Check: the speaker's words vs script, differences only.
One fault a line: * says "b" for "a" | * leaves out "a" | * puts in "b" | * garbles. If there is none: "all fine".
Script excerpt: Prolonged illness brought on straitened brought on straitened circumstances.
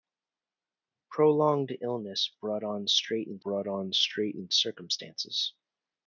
all fine